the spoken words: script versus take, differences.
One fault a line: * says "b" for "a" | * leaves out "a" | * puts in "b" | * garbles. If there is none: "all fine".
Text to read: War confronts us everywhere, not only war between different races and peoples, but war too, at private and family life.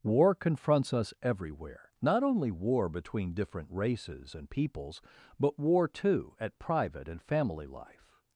all fine